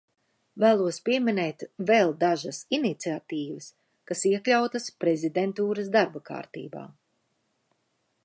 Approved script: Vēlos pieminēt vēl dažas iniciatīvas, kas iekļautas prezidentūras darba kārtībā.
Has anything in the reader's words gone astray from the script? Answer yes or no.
no